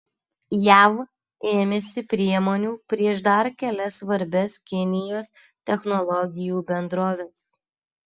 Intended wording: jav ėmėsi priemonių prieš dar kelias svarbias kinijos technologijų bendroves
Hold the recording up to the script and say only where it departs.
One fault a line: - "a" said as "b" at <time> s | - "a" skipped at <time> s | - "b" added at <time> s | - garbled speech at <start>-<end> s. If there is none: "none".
none